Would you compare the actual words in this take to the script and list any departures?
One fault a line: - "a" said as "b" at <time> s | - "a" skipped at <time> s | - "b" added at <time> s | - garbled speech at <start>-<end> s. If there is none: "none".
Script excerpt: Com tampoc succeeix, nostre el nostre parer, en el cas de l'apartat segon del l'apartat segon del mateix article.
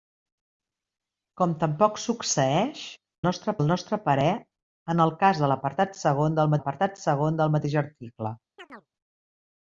none